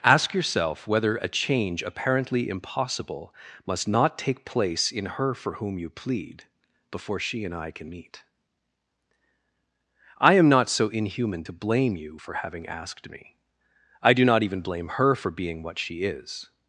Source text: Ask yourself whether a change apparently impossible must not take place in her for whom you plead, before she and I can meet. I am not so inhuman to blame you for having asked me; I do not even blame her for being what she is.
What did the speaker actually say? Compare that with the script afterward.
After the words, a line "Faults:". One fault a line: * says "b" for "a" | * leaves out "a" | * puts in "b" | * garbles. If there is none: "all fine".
Ask yourself whether a change apparently impossible must not take place in her for whom you plead, before she and I can meet. I am not so inhuman to blame you for having asked me; I do not even blame her for being what she is.
Faults:
all fine